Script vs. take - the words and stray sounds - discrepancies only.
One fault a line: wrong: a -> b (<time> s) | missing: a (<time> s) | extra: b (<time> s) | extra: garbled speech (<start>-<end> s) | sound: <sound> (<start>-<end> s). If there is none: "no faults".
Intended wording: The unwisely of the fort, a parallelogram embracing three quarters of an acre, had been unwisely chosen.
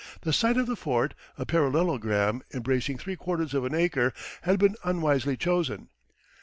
wrong: unwisely -> site (0.3 s)